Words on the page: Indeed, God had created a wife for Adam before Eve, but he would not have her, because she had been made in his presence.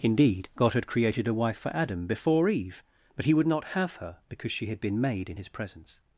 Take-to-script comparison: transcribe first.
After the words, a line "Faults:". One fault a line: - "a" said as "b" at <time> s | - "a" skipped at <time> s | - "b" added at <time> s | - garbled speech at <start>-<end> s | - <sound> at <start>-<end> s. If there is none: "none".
Indeed, God had created a wife for Adam before Eve, but he would not have her, because she had been made in his presence.
Faults:
none